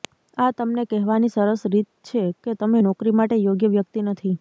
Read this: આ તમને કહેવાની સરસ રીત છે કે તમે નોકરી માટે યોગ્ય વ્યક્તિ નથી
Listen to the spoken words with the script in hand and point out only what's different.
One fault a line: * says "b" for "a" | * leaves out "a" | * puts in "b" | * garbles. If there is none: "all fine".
all fine